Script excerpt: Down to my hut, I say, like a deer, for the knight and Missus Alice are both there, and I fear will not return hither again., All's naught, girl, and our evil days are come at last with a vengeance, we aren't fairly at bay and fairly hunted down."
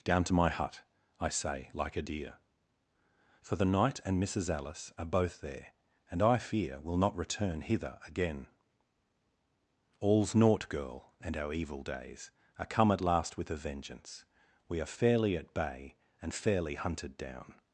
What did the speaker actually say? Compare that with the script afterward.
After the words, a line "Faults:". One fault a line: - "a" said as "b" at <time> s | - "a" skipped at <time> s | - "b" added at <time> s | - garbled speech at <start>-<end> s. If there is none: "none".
Down to my hut, I say, like a deer, for the knight and Missus Alice are both there, and I fear will not return hither again., All's naught, girl, and our evil days are come at last with a vengeance, we are fairly at bay and fairly hunted down."
Faults:
- "aren't" said as "are" at 14.8 s